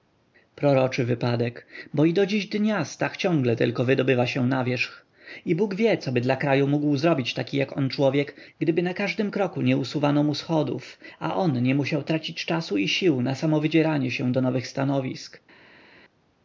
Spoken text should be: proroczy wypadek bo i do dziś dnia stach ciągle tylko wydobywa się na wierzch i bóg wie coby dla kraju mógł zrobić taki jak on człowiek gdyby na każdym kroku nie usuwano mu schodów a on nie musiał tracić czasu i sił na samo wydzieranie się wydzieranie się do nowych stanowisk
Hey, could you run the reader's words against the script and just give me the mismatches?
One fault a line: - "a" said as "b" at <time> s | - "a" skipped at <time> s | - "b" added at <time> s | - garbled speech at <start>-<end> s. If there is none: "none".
- "wydzieranie się" skipped at 14.3 s